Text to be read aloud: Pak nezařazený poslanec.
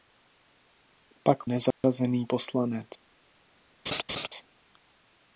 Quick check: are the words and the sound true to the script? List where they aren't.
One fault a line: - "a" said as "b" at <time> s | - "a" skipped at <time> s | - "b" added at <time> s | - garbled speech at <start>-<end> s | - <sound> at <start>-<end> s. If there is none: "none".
- dropout at 1.7-1.8 s
- laugh at 3.9-4.3 s